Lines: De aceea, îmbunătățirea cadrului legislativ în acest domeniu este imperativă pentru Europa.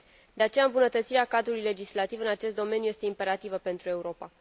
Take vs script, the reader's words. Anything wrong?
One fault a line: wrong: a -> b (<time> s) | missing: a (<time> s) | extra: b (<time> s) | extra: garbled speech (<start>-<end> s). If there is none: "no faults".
no faults